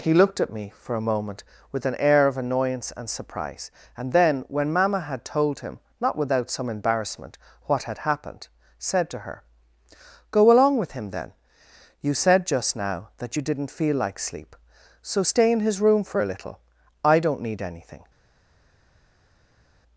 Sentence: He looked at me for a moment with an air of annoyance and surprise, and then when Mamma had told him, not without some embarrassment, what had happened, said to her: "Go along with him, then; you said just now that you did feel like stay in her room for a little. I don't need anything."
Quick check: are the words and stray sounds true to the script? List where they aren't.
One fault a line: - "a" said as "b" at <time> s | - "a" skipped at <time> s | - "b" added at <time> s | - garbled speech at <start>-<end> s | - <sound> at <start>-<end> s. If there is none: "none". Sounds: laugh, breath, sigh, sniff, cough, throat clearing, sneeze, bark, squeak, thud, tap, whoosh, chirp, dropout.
- "did" said as "didn't" at 13.4 s
- "sleep so" added at 14.2 s
- "her" said as "his" at 15.6 s